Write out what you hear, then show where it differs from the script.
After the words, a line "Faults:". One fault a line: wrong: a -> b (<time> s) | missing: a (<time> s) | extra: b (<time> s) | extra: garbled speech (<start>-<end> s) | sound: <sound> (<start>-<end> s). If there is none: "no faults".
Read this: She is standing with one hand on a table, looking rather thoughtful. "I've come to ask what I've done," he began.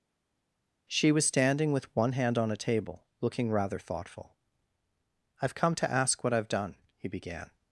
She was standing with one hand on a table, looking rather thoughtful. "I've come to ask what I've done," he began.
Faults:
wrong: is -> was (1.1 s)